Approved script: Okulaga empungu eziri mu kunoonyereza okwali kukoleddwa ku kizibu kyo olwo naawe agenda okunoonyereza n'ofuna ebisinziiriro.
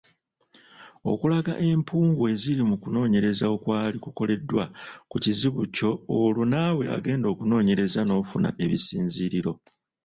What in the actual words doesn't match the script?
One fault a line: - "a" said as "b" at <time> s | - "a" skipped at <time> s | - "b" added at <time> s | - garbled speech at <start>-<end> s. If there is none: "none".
none